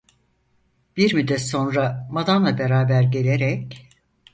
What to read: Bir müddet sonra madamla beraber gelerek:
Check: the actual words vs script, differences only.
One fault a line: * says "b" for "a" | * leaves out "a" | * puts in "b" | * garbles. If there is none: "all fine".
all fine